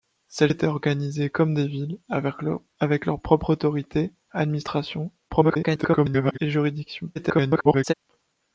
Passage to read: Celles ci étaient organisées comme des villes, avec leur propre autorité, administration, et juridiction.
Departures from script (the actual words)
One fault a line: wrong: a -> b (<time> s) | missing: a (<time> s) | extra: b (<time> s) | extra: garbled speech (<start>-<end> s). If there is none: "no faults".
missing: ci (0.5 s)
extra: garbled speech (5.3-6.4 s)
extra: garbled speech (7.2-7.9 s)